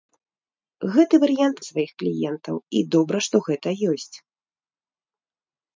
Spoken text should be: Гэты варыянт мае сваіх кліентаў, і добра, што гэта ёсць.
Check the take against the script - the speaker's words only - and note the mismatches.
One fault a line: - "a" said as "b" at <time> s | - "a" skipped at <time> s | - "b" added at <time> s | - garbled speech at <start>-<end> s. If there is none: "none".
- "мае" skipped at 1.6 s